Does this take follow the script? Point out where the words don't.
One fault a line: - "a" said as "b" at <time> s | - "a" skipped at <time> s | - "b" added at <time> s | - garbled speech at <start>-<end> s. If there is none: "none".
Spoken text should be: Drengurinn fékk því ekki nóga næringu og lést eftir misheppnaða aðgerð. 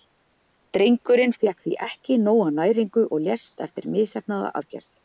none